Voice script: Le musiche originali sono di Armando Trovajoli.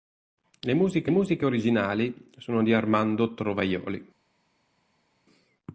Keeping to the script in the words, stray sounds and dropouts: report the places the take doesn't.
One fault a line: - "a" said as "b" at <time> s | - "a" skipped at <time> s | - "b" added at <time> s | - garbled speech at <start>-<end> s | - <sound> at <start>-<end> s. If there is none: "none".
- "musiche" added at 1.1 s